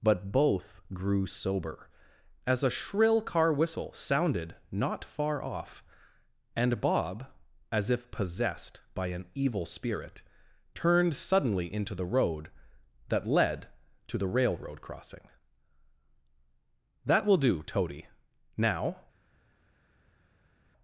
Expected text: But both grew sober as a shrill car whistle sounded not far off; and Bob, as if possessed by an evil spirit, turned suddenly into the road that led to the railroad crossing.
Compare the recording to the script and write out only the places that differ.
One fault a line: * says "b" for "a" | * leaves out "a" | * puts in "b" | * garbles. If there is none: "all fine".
* puts in "That will do Toady now"